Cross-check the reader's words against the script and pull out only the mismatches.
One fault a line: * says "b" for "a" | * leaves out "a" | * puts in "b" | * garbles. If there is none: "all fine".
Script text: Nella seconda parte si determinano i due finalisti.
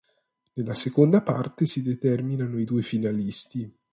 all fine